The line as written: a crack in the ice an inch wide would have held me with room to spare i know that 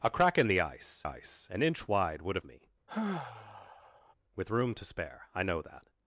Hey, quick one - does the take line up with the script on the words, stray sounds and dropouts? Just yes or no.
no